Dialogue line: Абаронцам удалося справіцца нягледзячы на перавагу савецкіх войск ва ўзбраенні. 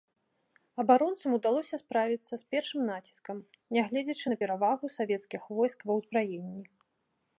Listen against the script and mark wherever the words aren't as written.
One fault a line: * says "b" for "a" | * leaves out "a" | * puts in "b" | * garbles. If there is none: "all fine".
* puts in "з першым націскам"